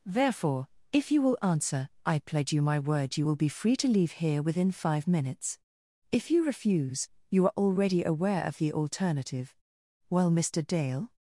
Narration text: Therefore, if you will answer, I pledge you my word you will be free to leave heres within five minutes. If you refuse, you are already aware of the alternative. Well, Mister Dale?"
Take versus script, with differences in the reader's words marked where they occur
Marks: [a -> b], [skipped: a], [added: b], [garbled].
Therefore, if you will answer, I pledge you my word you will be free to leave [heres -> here] within five minutes. If you refuse, you are already aware of the alternative. Well, Mister Dale?"